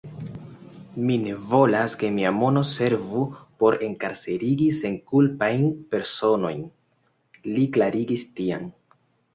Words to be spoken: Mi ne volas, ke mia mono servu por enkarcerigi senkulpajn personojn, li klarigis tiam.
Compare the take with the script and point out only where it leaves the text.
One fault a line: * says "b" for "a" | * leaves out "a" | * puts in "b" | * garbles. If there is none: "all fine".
all fine